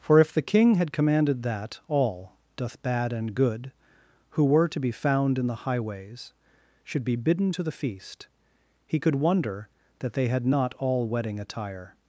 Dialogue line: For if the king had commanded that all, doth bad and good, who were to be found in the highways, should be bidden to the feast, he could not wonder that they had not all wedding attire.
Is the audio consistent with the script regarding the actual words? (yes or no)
no